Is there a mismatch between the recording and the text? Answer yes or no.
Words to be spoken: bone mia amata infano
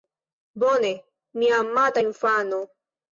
no